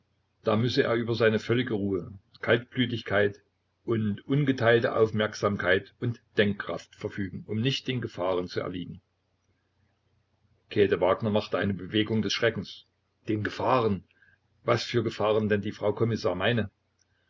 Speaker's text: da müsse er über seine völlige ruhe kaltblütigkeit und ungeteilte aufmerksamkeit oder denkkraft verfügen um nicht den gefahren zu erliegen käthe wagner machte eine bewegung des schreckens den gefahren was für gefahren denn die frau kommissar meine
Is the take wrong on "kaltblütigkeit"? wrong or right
right